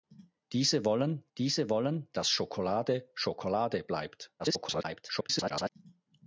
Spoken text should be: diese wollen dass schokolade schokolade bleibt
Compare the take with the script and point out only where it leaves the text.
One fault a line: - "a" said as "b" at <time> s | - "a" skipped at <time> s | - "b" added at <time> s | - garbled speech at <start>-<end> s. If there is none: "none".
- "diese wollen" added at 1.4 s
- garbled speech at 4.4-5.7 s